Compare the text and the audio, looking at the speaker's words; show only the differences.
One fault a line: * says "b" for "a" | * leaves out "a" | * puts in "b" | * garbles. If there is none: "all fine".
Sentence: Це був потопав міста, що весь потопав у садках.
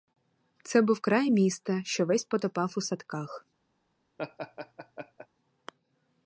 * says "край" for "потопав"